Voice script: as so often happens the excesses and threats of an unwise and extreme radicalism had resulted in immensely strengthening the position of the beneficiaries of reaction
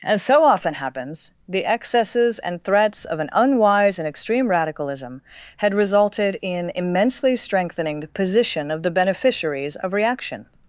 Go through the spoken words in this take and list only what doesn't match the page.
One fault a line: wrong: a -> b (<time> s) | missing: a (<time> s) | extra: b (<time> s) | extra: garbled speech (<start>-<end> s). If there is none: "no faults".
no faults